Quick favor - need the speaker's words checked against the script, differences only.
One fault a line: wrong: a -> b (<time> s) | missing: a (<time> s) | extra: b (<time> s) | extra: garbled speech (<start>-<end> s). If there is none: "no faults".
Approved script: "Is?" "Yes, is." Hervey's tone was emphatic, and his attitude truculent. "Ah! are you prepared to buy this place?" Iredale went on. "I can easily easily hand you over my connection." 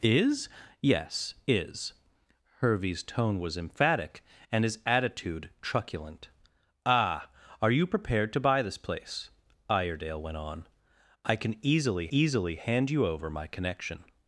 no faults